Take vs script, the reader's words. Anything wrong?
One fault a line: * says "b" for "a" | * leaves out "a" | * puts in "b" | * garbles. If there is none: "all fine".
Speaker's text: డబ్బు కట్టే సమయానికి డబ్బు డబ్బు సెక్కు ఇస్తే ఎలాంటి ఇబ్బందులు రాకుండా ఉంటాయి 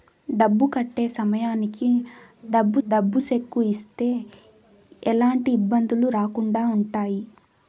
all fine